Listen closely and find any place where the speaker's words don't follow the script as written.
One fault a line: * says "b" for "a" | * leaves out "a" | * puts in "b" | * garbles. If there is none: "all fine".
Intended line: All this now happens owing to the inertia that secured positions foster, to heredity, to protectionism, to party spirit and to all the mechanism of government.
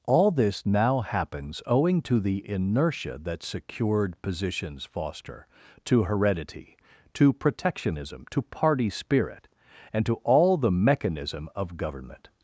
all fine